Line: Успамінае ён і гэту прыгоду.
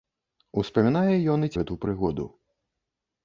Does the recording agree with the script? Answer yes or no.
yes